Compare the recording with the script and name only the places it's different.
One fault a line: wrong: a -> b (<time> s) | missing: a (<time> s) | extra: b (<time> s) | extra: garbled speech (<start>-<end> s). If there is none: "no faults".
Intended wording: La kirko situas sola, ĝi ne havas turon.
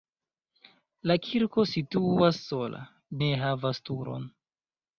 missing: ĝi (2.8 s)